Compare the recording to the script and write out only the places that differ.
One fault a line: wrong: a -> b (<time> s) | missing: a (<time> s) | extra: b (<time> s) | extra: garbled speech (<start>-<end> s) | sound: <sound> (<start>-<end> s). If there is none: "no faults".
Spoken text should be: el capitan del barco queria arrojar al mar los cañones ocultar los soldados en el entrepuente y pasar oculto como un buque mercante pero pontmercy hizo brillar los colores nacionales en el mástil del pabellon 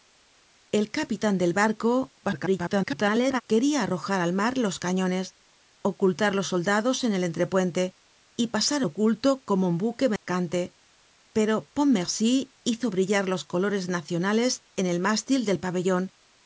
extra: garbled speech (2.2-3.4 s)
sound: dropout (10.2-10.3 s)